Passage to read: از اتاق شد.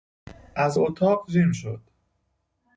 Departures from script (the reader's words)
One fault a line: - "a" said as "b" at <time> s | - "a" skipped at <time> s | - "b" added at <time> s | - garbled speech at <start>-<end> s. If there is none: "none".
- "جیم" added at 1.3 s